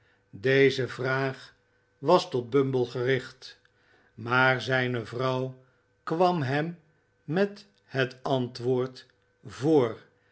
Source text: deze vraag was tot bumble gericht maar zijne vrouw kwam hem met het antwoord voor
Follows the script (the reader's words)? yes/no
yes